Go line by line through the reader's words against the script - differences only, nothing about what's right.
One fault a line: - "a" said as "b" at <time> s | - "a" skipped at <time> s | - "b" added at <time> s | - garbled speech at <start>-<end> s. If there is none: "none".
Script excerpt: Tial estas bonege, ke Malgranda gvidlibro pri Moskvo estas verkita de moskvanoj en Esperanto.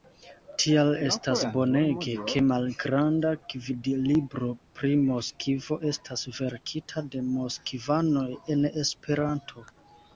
none